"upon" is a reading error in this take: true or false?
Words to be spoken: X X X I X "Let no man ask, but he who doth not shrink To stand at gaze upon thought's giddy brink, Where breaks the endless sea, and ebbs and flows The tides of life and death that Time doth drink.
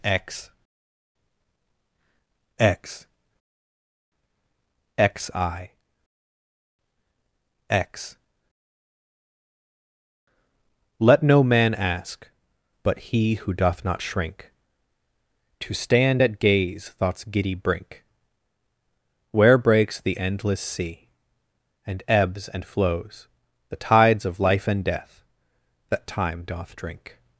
true